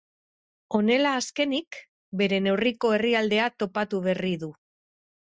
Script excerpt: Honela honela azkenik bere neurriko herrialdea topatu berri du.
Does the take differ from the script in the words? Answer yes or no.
yes